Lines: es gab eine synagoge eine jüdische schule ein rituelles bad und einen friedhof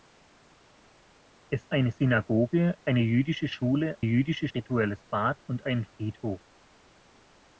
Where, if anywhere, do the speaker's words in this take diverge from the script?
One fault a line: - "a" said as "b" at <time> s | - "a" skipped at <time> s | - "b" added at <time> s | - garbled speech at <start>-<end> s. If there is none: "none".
- "gab" skipped at 1.7 s
- "ein" said as "jüdische" at 4.0 s